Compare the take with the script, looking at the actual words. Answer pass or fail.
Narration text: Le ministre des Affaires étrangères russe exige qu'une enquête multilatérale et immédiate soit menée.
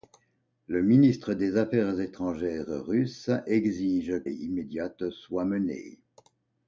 fail